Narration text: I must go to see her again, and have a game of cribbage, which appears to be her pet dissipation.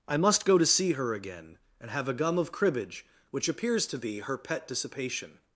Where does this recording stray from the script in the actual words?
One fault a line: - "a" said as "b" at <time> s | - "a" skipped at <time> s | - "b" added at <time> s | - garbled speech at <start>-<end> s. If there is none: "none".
- "game" said as "gum" at 2.1 s